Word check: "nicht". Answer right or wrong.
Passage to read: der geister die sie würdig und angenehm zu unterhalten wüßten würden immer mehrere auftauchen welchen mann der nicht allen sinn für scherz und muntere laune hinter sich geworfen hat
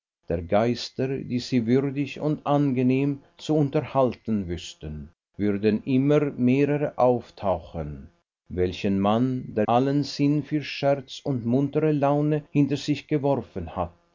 wrong